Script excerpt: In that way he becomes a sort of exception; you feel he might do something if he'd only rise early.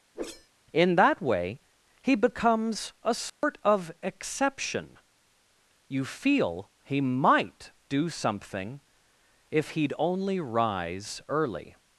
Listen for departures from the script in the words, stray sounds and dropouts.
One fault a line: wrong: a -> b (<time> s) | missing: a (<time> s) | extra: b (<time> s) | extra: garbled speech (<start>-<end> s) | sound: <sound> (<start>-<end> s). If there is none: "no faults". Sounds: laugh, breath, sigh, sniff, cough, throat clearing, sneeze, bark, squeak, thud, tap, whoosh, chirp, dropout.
sound: whoosh (0.1-0.5 s)
sound: dropout (3.3-3.4 s)